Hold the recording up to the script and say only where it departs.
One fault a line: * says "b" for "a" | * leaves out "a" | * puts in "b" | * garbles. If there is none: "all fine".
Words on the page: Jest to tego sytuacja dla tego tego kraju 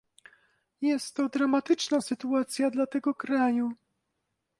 * says "dramatyczna" for "tego"
* leaves out "tego"